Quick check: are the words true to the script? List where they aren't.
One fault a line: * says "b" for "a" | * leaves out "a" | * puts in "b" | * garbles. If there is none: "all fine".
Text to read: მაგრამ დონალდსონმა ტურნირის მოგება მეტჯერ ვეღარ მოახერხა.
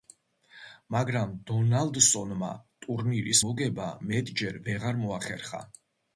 all fine